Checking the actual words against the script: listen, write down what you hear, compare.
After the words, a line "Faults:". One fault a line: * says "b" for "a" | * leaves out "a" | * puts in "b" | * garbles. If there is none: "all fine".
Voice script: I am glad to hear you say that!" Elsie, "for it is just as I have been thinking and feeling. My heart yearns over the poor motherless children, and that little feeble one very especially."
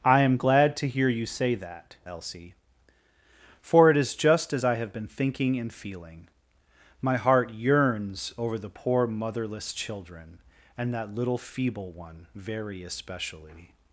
I am glad to hear you say that!" Elsie, "for it is just as I have been thinking and feeling. My heart yearns over the poor motherless children, and that little feeble one very especially."
Faults:
all fine